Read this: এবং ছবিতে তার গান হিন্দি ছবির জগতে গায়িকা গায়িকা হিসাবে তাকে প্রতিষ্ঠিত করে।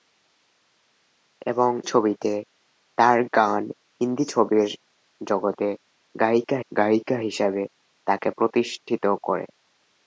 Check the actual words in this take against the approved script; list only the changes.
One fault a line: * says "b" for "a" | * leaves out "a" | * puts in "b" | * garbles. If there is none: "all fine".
all fine